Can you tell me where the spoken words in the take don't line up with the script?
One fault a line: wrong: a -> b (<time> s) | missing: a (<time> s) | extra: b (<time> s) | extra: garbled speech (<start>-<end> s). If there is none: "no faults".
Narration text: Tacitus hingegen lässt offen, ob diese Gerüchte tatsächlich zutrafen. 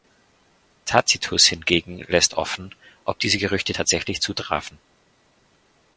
no faults